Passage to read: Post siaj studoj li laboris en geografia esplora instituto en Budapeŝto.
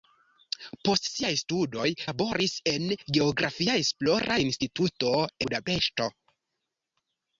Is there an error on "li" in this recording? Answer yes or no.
yes